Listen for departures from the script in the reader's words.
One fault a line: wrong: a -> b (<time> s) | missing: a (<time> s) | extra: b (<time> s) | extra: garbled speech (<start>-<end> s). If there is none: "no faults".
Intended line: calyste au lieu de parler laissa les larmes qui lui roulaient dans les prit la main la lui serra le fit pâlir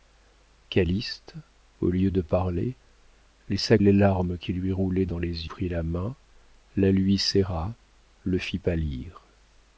no faults